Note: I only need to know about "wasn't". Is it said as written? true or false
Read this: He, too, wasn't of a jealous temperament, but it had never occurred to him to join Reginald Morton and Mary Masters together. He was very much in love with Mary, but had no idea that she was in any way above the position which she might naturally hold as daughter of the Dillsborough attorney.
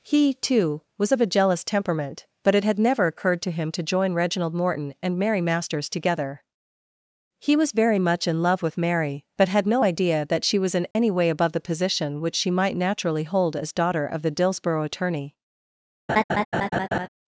false